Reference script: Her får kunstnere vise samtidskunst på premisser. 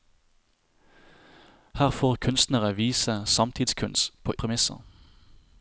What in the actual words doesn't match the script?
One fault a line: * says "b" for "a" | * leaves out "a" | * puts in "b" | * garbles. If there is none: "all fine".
all fine